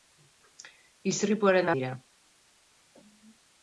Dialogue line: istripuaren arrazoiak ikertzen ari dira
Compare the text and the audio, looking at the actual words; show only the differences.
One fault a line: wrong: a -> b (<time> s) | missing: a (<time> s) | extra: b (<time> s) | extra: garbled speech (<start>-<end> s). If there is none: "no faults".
missing: arrazoiak ikertzen ari (1.7 s)